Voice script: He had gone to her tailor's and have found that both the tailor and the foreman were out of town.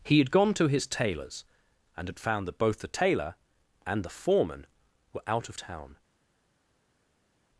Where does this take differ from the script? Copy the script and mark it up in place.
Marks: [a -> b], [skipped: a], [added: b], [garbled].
He had gone to [her -> his] tailor's and [have -> had] found that both the tailor and the foreman were out of town.